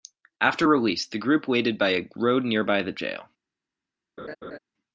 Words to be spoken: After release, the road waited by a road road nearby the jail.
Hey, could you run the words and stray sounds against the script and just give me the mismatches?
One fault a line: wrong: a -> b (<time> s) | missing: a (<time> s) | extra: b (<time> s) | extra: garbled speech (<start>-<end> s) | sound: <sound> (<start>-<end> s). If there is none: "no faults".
wrong: road -> group (1.2 s)
missing: road (2.5 s)
sound: laugh (4.2-4.6 s)